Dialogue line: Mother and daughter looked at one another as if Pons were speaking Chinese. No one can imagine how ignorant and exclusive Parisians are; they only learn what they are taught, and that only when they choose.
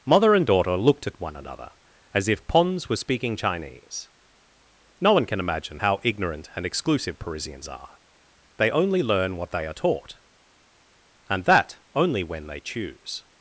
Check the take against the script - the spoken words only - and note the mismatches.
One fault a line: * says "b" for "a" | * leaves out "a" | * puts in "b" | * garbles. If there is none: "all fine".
all fine